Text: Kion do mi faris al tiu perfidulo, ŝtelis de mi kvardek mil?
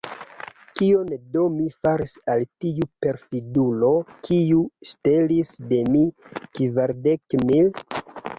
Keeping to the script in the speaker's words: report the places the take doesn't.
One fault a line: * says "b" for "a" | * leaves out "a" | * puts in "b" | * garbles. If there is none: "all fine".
* puts in "kiu"